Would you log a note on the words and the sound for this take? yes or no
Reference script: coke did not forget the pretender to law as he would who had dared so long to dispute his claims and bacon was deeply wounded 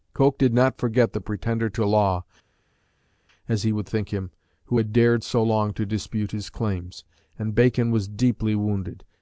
yes